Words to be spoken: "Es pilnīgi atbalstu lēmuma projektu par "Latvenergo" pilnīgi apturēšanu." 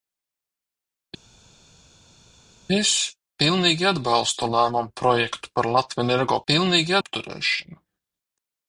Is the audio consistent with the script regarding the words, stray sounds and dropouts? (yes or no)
yes